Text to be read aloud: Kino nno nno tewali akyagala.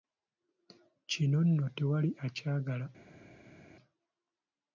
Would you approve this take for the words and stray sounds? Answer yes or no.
no